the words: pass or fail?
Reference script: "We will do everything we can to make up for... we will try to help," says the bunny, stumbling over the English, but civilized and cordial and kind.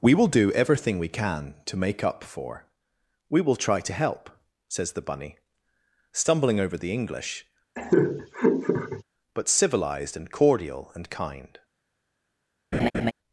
pass